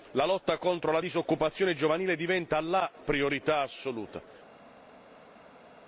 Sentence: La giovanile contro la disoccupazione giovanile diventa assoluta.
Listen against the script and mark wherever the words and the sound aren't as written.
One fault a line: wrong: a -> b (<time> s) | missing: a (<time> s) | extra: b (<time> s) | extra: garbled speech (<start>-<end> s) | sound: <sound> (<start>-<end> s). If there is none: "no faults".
wrong: giovanile -> lotta (0.2 s)
extra: la priorità (2.6 s)